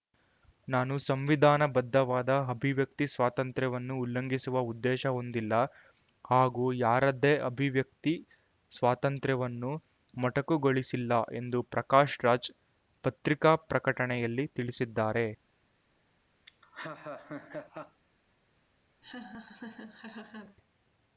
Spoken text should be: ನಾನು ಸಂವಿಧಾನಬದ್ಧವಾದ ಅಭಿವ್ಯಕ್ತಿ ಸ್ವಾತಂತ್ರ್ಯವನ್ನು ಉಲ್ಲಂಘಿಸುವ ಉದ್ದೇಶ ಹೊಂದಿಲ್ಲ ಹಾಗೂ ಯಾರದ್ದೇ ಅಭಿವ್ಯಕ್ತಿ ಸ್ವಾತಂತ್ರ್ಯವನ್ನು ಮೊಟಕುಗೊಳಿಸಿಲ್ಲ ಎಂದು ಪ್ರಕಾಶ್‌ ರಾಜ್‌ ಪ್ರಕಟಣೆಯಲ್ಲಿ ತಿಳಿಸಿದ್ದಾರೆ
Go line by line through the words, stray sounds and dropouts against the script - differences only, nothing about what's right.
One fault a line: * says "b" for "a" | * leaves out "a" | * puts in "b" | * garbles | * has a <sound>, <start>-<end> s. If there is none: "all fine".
* puts in "ಪತ್ರಿಕಾ"
* has a laugh, 16.5-18.0 s
* has a laugh, 19.0-20.6 s